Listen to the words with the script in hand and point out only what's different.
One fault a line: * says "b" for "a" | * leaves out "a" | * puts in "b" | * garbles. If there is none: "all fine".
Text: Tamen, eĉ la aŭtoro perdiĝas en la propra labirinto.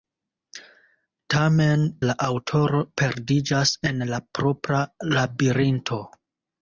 * leaves out "eĉ"